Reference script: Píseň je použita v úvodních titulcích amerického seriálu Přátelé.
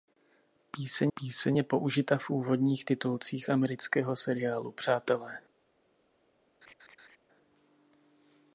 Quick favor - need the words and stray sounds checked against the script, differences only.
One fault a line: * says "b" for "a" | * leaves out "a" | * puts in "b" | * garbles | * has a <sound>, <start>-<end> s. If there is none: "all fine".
* puts in "píseň"
* has a laugh, 6.6-7.2 s